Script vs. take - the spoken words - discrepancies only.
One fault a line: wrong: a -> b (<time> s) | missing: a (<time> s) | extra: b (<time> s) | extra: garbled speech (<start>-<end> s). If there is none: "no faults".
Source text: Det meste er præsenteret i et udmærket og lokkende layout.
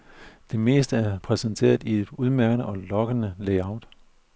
no faults